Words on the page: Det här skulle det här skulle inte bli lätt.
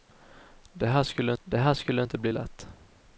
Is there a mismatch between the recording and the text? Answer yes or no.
no